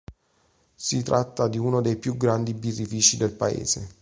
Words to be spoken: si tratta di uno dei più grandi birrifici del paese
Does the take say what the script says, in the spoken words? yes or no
yes